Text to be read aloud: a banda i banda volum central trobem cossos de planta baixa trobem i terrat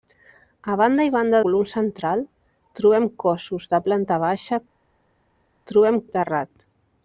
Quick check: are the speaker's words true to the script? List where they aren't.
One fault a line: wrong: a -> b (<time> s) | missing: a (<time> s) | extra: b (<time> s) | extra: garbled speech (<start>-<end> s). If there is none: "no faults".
no faults